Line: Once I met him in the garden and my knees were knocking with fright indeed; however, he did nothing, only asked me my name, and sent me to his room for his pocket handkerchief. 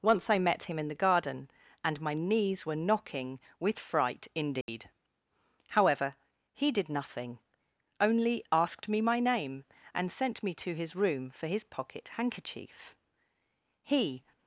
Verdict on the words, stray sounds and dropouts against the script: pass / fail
fail